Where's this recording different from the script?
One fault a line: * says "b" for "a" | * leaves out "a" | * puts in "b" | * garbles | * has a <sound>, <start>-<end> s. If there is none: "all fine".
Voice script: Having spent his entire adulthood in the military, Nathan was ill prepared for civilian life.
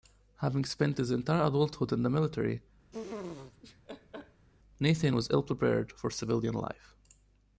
* has a laugh, 2.9-4.5 s